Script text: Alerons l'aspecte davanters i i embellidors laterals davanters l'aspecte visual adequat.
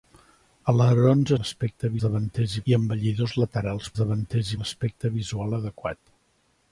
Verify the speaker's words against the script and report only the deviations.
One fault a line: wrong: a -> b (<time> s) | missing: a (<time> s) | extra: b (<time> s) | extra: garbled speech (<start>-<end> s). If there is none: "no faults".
no faults